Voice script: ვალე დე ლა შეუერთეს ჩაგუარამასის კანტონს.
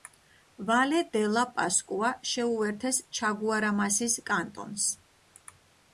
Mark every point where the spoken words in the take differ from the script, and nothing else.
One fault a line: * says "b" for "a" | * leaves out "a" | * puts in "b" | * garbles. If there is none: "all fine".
* puts in "პასკუა"